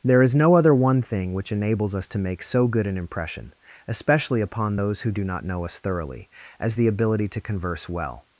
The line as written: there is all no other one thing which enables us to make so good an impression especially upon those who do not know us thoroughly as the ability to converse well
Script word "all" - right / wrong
wrong